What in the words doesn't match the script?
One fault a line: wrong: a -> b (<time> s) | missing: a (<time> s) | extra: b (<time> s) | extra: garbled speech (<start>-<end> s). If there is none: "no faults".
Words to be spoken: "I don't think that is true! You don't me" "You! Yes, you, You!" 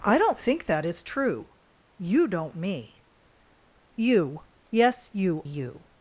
no faults